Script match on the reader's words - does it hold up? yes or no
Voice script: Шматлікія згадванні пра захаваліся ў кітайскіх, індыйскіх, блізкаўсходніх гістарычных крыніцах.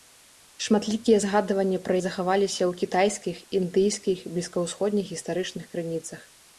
yes